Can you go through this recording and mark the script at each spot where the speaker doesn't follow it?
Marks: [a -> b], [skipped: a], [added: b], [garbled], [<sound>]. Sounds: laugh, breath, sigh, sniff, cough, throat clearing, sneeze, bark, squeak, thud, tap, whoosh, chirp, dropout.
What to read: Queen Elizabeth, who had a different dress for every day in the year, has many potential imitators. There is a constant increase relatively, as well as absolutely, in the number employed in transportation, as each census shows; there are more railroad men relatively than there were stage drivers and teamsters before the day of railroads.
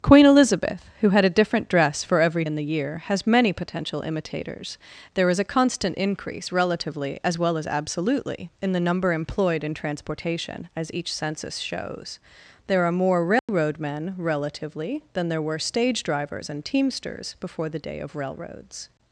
Queen Elizabeth, who had a different dress for every [skipped: day] in the year, has many potential imitators. There is a constant increase relatively, as well as absolutely, in the number employed in transportation, as each census shows; there are more railroad [dropout] men relatively than there were stage drivers and teamsters before the day of railroads.